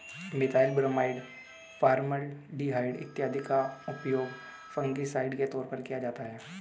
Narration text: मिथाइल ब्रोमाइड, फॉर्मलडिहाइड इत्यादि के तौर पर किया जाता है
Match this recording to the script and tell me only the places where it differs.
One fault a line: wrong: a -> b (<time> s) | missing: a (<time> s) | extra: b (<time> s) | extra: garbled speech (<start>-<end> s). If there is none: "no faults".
extra: का उपयोग फंगिसाइड (3.4 s)